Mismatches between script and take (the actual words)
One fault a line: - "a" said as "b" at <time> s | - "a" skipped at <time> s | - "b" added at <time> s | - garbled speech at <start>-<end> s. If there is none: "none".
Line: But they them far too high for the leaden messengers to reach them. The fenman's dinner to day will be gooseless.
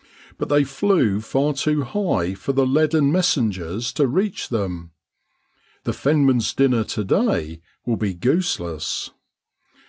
- "them" said as "flew" at 0.6 s